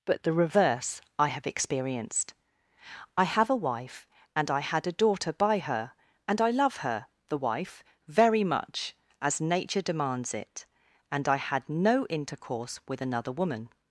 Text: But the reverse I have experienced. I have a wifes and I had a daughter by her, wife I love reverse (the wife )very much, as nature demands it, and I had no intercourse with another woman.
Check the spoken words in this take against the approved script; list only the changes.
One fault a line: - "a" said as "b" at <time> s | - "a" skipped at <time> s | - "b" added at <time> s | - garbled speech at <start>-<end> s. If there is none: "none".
- "wifes" said as "wife" at 3.6 s
- "wife" said as "and" at 6.3 s
- "reverse" said as "her" at 6.8 s